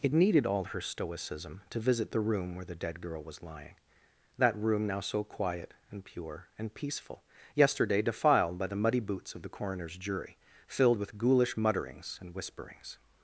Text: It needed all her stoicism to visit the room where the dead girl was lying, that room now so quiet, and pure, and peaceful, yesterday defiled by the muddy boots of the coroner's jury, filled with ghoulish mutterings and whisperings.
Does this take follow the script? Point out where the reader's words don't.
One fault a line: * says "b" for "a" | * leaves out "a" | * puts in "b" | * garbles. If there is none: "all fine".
all fine